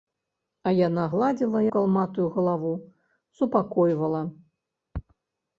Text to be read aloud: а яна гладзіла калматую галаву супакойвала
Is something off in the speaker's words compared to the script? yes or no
no